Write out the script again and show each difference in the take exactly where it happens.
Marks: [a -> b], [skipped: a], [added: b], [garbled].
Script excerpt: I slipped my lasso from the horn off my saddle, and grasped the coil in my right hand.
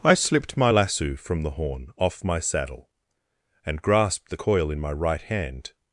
I slipped my lasso from the horn off my saddle, and grasped the coil in my right hand.